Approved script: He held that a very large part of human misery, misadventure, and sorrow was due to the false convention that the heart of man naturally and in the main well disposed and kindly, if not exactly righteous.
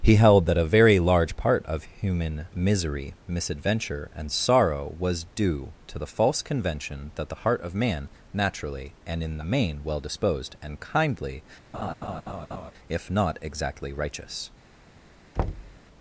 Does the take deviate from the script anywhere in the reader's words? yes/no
no